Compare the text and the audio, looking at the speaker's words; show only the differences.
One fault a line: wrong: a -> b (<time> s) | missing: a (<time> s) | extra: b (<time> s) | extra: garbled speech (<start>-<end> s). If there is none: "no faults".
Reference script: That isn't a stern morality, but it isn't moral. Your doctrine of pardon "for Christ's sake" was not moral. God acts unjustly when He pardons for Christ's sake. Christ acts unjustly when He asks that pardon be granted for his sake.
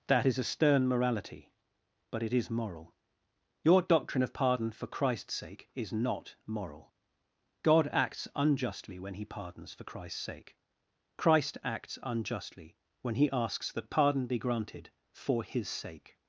wrong: isn't -> is (0.2 s)
wrong: isn't -> is (2.3 s)
wrong: was -> is (5.7 s)